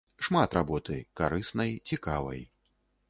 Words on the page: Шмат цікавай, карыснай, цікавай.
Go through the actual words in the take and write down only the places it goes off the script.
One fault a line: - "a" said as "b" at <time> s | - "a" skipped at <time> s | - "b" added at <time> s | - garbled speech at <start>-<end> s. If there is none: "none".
- "цікавай" said as "работы" at 0.6 s